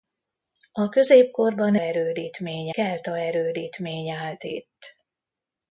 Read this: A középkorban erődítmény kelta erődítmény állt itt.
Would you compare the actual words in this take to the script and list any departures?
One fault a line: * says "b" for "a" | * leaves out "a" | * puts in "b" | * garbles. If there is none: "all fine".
all fine